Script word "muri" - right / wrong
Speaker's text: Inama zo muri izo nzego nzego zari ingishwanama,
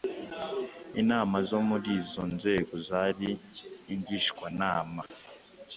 right